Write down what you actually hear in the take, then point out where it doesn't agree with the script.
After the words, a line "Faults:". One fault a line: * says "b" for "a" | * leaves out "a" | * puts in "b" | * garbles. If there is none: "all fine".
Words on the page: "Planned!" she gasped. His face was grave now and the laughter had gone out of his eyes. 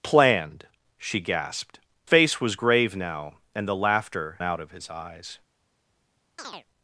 "Planned!" she gasped. Face was grave now and the laughter out of his eyes.
Faults:
* leaves out "His"
* leaves out "had gone"